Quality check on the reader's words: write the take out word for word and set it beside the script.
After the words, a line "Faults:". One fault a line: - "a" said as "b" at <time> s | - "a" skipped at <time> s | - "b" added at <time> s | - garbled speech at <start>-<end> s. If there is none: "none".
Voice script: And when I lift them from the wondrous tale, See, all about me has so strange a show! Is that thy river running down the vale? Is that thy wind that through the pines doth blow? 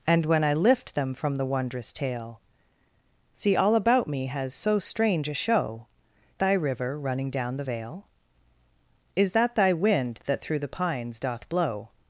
And when I lift them from the wondrous tale, See, all about me has so strange a show! Thy river running down the vale? Is that thy wind that through the pines doth blow?
Faults:
- "Is that" skipped at 5.8 s